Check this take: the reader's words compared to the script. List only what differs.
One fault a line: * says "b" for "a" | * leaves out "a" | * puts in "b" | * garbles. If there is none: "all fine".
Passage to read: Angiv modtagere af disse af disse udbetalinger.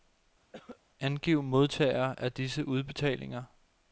* leaves out "af disse"